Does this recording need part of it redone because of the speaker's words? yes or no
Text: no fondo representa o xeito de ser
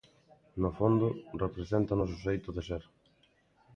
yes